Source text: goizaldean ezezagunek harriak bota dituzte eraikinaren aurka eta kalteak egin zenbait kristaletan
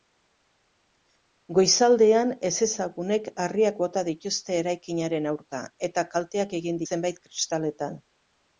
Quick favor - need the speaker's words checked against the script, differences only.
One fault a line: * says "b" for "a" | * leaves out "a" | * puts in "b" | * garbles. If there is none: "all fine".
all fine